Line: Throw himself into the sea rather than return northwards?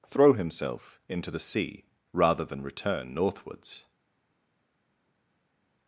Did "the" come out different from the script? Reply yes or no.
no